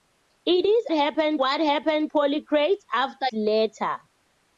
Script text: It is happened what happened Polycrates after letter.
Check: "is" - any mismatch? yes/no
no